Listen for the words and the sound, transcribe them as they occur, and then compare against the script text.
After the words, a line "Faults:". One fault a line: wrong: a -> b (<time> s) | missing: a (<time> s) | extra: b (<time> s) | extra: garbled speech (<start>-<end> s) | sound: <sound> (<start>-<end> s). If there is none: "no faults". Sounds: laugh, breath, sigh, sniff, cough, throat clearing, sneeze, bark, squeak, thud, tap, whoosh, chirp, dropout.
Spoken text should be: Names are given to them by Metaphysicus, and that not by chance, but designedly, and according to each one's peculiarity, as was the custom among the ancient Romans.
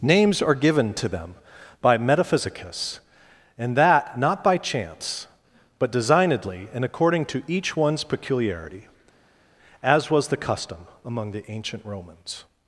Names are given to them by Metaphysicus, and that not by chance, but designedly, and according to each one's peculiarity, as was the custom among the ancient Romans.
Faults:
no faults